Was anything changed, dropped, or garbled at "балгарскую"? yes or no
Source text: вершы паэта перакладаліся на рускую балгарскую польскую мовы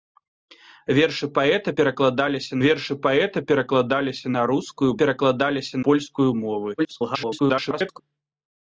yes